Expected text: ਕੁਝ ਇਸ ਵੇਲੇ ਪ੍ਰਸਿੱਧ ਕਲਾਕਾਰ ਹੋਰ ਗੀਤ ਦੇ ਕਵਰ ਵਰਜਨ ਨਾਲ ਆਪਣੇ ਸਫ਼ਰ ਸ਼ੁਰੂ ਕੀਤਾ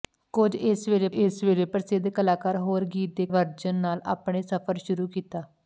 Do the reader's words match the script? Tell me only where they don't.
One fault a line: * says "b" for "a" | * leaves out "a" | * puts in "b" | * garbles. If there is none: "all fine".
* puts in "ਇਸ ਵੇਲੇ"
* leaves out "ਕਵਰ"